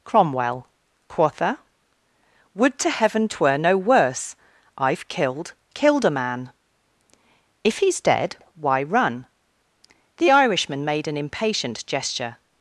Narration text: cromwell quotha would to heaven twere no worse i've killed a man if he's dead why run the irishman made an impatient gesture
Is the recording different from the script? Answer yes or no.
yes